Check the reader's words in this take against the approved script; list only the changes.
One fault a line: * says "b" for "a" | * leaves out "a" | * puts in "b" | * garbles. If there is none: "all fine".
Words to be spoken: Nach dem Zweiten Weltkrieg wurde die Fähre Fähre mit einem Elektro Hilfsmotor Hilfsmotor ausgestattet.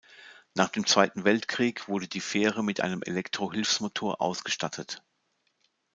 * leaves out "Fähre"
* leaves out "Hilfsmotor"